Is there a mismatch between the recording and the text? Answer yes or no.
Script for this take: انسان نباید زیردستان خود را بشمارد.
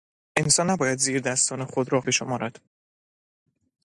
no